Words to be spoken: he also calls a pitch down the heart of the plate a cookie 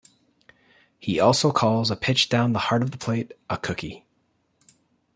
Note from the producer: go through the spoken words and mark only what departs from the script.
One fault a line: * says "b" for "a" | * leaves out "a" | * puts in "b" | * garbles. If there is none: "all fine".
all fine